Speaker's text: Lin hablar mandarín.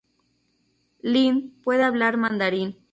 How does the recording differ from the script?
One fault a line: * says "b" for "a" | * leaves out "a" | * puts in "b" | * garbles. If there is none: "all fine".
* puts in "puede"